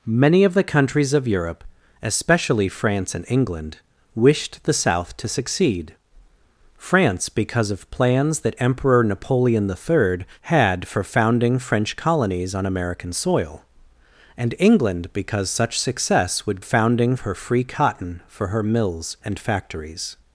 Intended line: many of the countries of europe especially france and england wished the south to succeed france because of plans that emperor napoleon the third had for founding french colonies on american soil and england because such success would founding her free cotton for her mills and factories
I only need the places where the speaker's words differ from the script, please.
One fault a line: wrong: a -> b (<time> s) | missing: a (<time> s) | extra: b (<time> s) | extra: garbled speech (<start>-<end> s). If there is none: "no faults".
no faults